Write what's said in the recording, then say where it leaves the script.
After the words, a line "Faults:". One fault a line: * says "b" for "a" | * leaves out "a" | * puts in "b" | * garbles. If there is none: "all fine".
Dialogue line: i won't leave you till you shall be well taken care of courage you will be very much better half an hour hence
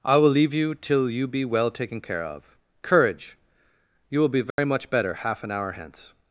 i will leave you till you be well taken care of courage you will be very much better half an hour hence
Faults:
* says "will" for "won't"
* leaves out "shall"